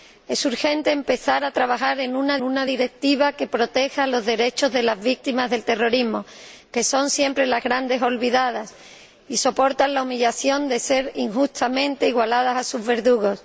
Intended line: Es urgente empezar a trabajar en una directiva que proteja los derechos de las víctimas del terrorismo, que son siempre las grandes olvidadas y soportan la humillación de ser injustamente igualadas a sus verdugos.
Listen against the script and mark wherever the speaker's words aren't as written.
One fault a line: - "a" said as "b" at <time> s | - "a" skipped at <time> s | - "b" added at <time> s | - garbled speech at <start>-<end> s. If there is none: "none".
- "una" added at 2.4 s